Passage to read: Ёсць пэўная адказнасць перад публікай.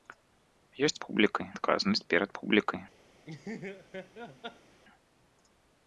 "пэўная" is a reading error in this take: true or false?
true